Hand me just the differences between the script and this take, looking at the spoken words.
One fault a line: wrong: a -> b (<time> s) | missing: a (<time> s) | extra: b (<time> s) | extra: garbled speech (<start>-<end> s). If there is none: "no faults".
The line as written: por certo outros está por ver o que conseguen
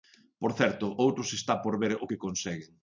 no faults